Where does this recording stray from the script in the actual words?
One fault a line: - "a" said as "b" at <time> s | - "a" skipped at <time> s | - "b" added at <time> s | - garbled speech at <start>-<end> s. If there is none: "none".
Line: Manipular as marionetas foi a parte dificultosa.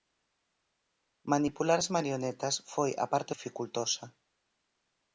none